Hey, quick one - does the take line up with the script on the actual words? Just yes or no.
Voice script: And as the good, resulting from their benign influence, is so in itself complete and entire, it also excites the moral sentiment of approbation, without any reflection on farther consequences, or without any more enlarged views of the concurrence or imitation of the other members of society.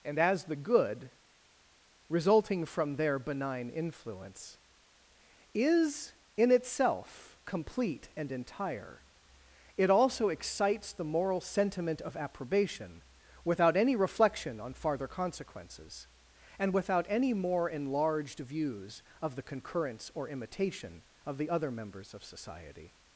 no